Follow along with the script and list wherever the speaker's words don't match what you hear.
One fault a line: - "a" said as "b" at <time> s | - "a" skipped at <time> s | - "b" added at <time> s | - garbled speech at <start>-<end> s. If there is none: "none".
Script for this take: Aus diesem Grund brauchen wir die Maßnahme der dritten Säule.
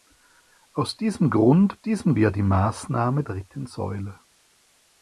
- "brauchen" said as "diesem" at 1.8 s
- "der" skipped at 3.2 s